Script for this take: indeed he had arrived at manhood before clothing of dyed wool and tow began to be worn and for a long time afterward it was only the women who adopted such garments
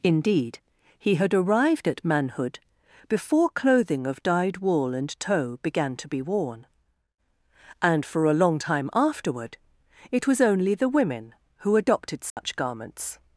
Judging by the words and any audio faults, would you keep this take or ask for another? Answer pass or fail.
fail